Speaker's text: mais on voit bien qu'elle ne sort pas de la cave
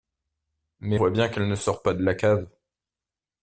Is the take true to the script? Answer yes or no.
no